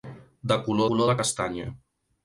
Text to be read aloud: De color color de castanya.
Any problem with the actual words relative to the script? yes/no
no